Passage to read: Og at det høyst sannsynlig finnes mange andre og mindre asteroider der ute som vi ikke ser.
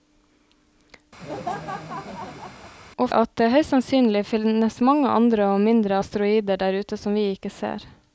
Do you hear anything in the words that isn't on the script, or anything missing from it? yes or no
no